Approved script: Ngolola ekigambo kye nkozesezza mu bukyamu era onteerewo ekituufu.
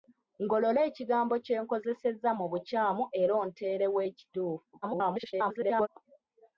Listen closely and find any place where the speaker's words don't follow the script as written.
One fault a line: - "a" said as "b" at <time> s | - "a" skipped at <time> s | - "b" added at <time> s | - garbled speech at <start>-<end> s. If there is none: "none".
- garbled speech at 4.8-5.9 s